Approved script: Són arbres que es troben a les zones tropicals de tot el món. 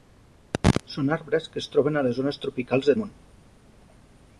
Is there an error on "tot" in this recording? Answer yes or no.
yes